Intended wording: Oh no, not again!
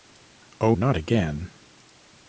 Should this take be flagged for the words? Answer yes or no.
yes